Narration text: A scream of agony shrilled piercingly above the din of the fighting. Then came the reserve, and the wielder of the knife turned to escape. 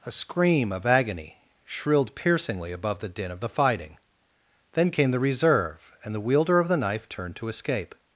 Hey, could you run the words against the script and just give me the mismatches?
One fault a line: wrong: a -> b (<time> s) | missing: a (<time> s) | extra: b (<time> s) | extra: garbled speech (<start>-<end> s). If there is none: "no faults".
no faults